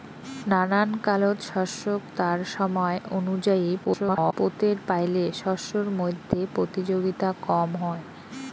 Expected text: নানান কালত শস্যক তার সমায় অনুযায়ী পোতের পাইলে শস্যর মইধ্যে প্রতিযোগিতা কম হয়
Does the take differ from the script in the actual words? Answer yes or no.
yes